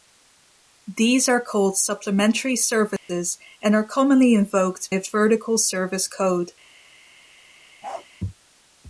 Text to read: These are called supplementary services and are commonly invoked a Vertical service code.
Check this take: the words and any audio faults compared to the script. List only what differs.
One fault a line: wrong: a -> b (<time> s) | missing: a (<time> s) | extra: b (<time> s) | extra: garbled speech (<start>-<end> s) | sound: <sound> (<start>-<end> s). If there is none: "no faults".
sound: dropout (3.0-3.1 s)
sound: bark (7.8-8.1 s)